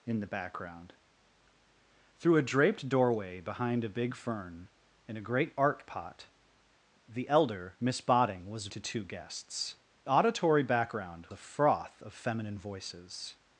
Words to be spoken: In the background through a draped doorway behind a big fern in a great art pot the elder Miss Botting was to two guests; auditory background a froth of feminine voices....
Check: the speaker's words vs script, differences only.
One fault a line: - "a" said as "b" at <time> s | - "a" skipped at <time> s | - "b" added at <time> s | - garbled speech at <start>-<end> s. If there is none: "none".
none